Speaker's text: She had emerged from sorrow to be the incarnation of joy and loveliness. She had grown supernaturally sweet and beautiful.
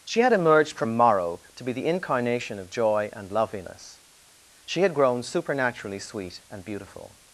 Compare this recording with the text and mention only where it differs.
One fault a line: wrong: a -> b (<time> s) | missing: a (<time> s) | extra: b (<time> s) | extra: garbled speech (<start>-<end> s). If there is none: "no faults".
wrong: sorrow -> morrow (1.0 s)